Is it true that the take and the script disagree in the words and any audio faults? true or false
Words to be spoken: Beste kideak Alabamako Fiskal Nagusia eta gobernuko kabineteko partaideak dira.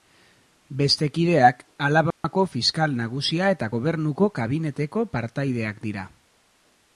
true